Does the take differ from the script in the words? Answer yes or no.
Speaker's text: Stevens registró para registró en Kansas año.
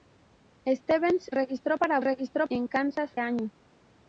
no